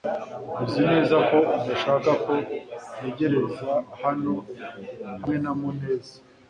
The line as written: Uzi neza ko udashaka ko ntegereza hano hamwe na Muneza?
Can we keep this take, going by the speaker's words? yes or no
yes